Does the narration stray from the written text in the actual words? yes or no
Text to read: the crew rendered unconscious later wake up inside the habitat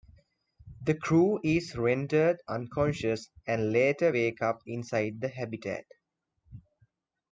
yes